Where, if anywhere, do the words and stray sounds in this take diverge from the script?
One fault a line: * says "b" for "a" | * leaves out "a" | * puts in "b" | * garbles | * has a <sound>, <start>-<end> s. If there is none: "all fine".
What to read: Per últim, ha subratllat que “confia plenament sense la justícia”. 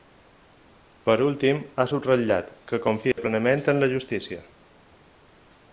* has a dropout, 3.1-3.2 s
* says "en" for "sense"